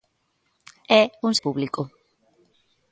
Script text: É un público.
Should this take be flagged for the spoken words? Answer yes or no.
no